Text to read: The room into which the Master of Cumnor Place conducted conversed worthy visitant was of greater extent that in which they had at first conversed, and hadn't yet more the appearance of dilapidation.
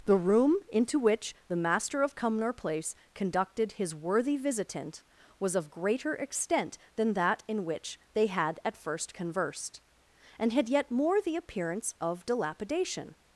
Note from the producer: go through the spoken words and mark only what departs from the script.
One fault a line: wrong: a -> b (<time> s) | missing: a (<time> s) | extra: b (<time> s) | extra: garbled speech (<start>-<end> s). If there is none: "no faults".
wrong: conversed -> his (3.7 s)
extra: than (7.0 s)
wrong: hadn't -> had (10.5 s)